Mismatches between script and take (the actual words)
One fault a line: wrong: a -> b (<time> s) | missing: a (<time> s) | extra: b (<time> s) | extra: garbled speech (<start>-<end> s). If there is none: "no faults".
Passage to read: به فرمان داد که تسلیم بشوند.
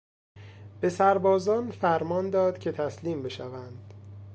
extra: سربازان (0.9 s)